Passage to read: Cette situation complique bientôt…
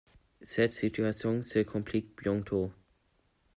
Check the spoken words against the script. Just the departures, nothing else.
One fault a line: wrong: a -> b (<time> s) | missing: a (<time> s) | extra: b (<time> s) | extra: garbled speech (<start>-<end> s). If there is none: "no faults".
extra: se (1.4 s)